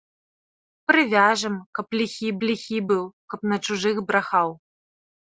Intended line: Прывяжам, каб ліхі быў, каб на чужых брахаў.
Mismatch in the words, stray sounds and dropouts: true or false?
true